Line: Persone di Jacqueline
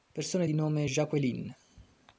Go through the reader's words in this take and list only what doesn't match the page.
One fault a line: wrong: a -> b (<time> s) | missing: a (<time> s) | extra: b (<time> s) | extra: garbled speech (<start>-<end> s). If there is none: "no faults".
extra: nome (0.5 s)